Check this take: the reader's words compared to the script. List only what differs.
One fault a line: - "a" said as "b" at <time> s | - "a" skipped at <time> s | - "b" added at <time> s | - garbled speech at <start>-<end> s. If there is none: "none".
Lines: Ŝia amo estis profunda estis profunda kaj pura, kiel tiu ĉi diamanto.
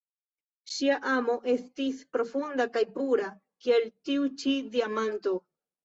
- "estis profunda" skipped at 2.7 s